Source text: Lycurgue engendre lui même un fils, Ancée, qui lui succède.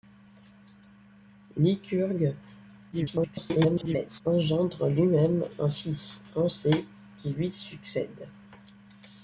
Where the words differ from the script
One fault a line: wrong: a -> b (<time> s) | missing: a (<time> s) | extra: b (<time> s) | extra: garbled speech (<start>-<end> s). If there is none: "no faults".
extra: garbled speech (2.9-4.2 s)